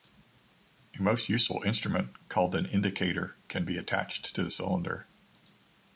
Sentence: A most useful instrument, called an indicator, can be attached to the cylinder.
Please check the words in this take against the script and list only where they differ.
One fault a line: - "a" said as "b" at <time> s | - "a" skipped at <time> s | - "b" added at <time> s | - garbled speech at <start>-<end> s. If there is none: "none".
- "the" skipped at 4.4 s